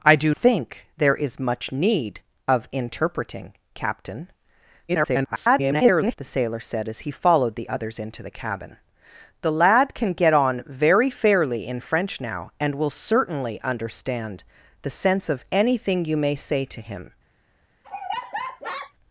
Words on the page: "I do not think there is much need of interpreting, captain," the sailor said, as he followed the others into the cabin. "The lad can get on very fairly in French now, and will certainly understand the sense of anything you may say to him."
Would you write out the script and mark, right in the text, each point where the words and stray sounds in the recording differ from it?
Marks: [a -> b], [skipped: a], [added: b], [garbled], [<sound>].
"I do [skipped: not] think there is much need of interpreting, captain," [garbled] the sailor said, as he followed the others into the cabin. "The lad can get on very fairly in French now, and will certainly understand the sense of anything you may say to him." [laugh]